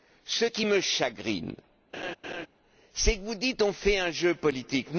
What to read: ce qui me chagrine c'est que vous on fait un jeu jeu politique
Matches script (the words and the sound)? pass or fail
fail